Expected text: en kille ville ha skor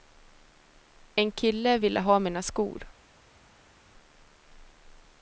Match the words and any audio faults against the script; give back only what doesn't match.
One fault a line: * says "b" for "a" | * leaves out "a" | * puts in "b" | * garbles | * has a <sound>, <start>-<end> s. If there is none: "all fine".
* puts in "mina"